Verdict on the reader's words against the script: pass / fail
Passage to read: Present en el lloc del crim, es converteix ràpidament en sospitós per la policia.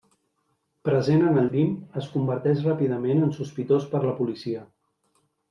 fail